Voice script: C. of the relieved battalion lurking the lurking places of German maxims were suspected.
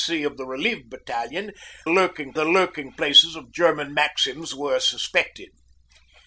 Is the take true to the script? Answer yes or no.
yes